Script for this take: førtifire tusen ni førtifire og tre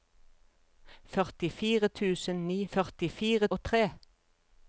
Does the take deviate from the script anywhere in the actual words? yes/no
no